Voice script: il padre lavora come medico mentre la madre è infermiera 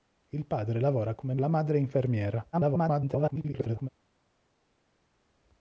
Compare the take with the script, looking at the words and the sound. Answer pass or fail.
fail